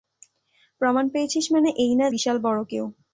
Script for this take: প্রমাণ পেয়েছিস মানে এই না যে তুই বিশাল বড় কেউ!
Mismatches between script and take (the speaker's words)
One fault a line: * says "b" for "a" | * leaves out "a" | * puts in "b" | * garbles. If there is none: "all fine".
* leaves out "যে তুই"